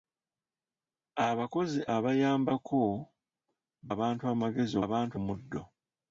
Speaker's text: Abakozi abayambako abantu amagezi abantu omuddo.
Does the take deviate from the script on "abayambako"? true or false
false